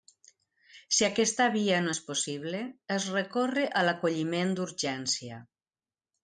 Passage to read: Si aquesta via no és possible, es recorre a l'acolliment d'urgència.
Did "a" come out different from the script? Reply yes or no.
no